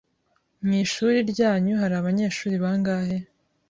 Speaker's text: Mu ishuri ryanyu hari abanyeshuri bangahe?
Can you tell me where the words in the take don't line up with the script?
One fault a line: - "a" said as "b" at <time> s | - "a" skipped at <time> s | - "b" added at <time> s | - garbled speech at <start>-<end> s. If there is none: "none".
none